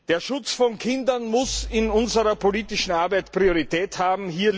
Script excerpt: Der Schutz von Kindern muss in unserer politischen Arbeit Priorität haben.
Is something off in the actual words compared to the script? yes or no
no